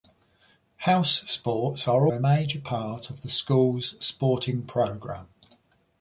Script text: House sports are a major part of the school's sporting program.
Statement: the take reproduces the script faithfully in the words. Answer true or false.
true